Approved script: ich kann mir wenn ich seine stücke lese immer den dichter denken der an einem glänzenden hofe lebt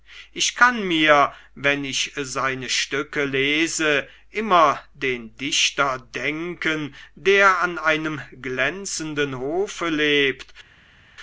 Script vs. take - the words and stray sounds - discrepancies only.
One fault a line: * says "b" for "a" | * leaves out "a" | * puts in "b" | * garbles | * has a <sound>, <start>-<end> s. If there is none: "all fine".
all fine